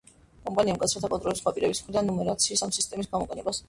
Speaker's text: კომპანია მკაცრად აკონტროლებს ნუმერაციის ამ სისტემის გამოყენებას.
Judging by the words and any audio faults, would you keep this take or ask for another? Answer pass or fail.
fail